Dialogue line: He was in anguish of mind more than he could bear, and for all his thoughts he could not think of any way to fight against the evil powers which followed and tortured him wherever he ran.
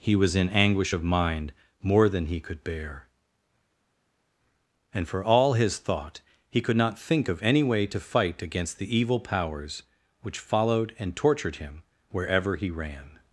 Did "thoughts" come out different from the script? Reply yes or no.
yes